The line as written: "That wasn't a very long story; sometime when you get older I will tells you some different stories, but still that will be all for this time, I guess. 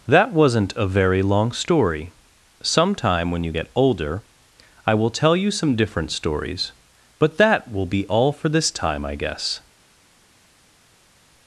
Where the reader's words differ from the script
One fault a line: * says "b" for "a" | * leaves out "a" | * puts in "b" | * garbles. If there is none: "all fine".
* says "tell" for "tells"
* leaves out "still"